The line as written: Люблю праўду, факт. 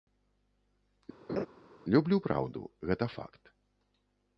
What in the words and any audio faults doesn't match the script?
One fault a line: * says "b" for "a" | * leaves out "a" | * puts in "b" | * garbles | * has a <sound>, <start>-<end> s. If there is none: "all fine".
* has a laugh, 1.3-1.5 s
* puts in "гэта"